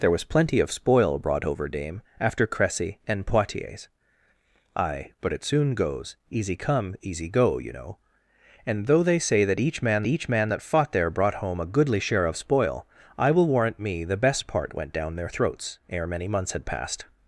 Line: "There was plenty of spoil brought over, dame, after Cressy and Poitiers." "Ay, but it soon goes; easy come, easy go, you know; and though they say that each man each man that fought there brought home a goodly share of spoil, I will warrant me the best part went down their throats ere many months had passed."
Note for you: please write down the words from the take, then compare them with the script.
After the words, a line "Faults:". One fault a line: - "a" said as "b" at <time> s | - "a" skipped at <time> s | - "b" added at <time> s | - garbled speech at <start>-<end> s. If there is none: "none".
"There was plenty of spoil brought over, dame, after Cressy and Poitiers." "Ay, but it soon goes; easy come, easy go, you know; and though they say that each man each man that fought there brought home a goodly share of spoil, I will warrant me the best part went down their throats ere many months had passed."
Faults:
none